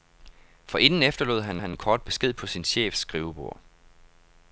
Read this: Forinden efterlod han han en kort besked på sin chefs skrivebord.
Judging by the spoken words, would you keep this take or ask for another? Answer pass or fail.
pass